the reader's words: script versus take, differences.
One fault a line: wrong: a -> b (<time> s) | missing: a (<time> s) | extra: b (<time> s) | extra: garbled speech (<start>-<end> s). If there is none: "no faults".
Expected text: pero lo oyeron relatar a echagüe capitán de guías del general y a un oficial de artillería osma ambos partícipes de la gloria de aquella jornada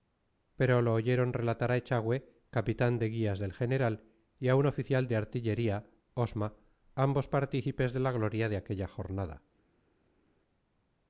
no faults